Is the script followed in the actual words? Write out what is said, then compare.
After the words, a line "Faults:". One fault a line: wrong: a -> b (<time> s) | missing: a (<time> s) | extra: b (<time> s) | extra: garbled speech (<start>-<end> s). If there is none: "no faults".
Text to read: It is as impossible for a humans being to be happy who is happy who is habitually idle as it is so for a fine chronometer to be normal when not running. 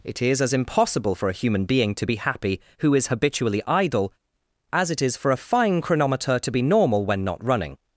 It is as impossible for a human being to be happy who is habitually idle as it is for a fine chronometer to be normal when not running.
Faults:
wrong: humans -> human (1.3 s)
missing: happy who is (3.1 s)
missing: so (5.2 s)